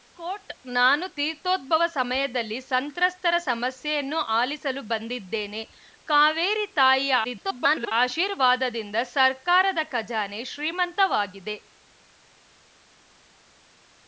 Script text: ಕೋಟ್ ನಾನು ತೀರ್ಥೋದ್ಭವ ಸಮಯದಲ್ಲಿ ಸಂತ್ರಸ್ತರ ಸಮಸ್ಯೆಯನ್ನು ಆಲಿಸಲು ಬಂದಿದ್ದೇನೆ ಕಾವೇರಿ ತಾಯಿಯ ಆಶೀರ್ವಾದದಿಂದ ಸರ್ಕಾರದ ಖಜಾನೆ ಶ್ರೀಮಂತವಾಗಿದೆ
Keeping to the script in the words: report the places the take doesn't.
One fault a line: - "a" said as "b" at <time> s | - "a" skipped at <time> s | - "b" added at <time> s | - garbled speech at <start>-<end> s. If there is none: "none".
- garbled speech at 7.2-7.9 s